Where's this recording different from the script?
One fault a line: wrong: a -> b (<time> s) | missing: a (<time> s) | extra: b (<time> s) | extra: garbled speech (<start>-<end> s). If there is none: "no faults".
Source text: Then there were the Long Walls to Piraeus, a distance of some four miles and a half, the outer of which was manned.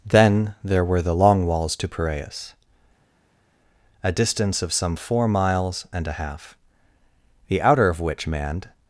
missing: was (8.3 s)